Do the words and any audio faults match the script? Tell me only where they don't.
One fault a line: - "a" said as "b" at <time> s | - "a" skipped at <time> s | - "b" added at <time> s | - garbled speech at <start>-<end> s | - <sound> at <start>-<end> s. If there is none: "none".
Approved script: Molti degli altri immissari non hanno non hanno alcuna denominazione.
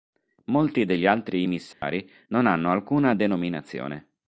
- dropout at 1.7-1.8 s
- "non hanno" skipped at 2.7 s